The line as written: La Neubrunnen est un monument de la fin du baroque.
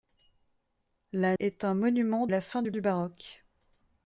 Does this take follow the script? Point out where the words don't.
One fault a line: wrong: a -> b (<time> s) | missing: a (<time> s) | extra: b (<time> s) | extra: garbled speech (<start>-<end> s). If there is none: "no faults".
missing: Neubrunnen (1.4 s)
missing: de (2.3 s)
extra: du (2.7 s)